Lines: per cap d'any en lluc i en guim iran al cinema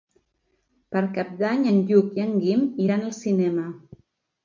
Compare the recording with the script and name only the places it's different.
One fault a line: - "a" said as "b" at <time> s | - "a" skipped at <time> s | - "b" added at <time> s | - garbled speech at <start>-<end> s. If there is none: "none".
none